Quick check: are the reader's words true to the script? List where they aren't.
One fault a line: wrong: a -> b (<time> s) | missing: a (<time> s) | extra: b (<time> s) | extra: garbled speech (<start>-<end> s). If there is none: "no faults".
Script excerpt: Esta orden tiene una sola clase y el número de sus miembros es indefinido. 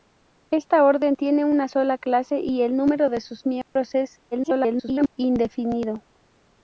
extra: garbled speech (4.3-5.1 s)